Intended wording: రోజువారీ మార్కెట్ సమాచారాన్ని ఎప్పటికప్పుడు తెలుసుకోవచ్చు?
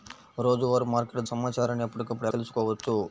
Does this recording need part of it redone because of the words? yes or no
no